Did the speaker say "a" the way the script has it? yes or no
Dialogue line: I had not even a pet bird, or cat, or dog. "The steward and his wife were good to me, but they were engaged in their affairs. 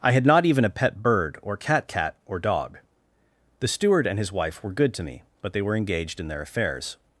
yes